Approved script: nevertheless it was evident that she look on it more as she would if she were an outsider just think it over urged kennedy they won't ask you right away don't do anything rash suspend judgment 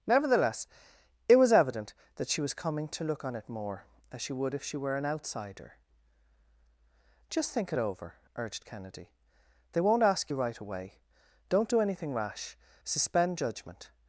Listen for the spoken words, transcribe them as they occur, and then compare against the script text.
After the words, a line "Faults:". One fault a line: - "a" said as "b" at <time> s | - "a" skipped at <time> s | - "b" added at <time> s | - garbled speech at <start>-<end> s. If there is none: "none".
nevertheless it was evident that she was coming to look on it more as she would if she were an outsider just think it over urged kennedy they won't ask you right away don't do anything rash suspend judgment
Faults:
- "was coming to" added at 2.4 s